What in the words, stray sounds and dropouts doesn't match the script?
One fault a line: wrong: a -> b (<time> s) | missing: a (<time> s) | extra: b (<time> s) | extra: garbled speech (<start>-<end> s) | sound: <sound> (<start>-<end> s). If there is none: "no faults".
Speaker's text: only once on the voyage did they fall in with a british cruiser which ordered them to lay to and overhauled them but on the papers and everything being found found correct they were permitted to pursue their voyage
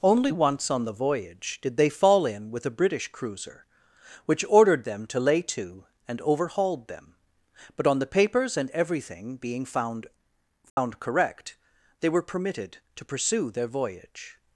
sound: dropout (10.7-10.8 s)